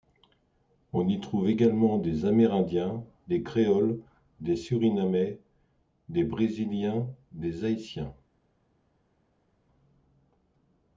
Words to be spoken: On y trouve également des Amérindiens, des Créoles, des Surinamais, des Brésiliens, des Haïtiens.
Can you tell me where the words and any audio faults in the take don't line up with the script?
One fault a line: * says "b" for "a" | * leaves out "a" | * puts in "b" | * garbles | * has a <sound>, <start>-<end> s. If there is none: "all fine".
all fine